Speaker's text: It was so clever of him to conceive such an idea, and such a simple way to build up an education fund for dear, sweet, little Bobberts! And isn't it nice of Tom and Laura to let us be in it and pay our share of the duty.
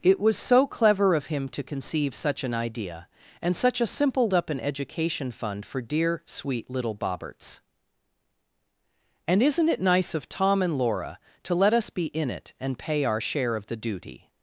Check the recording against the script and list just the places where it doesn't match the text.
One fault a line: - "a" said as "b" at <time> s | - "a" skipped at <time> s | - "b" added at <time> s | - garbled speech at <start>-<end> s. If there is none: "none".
- "way to build" skipped at 4.3 s